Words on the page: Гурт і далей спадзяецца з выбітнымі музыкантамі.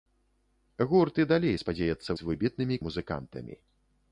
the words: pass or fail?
pass